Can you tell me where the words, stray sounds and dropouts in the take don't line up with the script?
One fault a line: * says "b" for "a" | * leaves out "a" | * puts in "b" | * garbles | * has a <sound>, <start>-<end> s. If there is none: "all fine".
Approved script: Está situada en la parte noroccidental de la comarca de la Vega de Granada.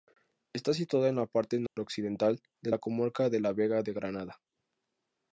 * has a dropout, 1.7-1.8 s